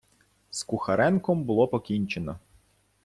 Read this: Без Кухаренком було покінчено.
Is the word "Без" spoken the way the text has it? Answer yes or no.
no